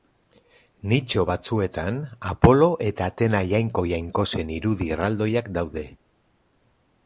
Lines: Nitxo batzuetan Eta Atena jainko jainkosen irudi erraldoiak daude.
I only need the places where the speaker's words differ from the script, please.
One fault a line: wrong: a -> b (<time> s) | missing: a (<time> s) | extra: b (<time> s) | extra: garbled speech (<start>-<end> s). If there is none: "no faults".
extra: Apolo (2.3 s)